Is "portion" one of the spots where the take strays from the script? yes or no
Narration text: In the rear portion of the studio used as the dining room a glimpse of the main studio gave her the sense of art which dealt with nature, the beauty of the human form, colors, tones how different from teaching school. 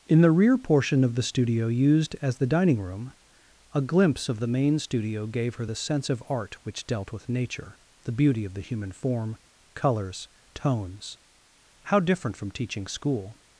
no